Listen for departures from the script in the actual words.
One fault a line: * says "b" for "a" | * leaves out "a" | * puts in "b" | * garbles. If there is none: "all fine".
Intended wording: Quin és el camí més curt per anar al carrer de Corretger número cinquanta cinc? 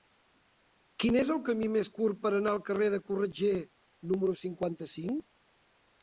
all fine